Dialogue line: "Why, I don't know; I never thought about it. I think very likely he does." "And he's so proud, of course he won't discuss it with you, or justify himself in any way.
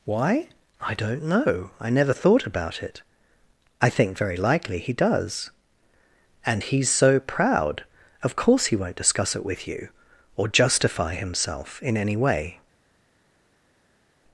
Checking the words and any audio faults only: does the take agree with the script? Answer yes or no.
yes